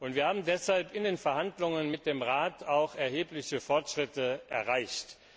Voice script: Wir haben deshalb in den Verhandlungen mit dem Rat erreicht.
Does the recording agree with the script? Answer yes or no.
no